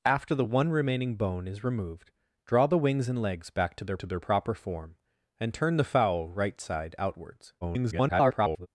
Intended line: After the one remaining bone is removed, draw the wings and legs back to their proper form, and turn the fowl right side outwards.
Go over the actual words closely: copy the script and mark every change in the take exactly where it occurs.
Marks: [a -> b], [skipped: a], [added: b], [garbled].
After the one remaining bone is removed, draw the wings and legs back to their [added: to their] proper form, and turn the fowl right side outwards. [garbled]